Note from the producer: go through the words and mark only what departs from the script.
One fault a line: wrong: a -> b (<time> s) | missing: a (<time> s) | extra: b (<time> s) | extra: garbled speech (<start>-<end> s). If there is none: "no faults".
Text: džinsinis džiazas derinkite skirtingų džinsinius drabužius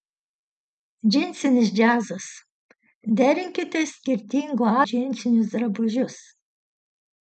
no faults